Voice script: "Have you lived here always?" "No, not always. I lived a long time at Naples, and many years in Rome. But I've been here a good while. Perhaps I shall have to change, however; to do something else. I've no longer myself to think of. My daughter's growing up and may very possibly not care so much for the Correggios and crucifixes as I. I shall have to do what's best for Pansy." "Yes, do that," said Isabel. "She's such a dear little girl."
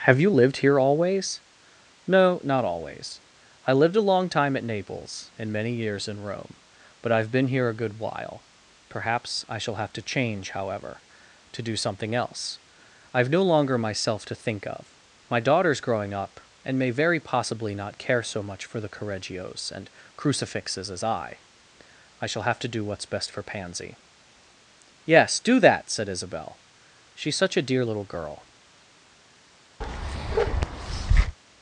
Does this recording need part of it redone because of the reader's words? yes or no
no